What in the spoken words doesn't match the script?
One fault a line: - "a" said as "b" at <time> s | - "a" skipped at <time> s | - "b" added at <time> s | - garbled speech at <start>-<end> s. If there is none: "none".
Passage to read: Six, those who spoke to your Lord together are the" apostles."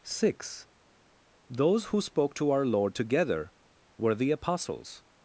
- "your" said as "our" at 2.5 s
- "are" said as "were" at 4.0 s